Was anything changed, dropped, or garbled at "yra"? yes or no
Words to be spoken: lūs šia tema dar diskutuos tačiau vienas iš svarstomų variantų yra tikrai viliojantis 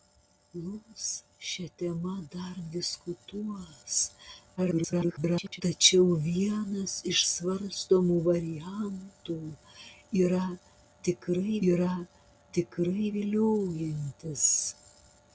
no